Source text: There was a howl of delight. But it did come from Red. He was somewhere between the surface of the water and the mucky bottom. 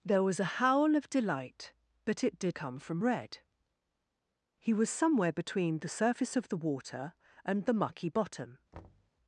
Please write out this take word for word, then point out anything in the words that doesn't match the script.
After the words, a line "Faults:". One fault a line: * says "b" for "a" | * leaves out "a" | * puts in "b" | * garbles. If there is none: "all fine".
There was a howl of delight. But it did come from Red. He was somewhere between the surface of the water and the mucky bottom.
Faults:
all fine